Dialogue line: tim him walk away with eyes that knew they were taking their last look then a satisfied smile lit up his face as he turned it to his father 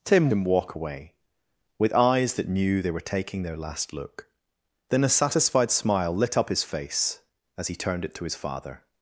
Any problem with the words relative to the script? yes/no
no